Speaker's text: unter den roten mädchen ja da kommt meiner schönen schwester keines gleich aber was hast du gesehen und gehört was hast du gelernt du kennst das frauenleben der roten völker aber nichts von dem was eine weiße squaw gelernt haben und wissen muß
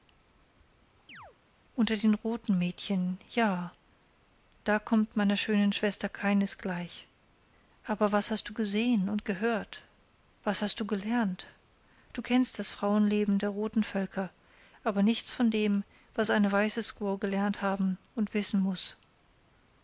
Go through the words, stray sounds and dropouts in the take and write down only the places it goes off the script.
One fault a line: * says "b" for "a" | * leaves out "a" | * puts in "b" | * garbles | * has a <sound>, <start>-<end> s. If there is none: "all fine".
* has a chirp, 1.1-1.4 s